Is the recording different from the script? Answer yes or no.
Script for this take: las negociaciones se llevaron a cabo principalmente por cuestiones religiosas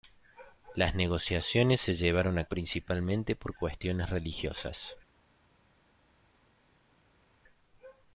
yes